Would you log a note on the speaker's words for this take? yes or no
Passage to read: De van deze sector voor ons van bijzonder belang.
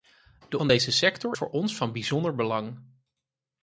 no